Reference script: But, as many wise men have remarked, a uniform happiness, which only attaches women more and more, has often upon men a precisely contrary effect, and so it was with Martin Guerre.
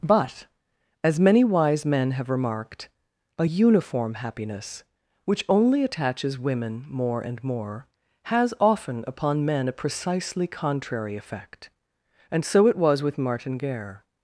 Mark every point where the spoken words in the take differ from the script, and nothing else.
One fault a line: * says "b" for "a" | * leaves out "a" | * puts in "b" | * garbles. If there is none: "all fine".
all fine